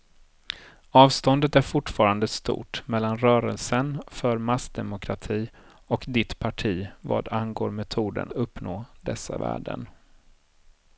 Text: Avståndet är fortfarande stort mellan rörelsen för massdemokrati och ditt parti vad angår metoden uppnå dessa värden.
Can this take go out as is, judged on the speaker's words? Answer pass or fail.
pass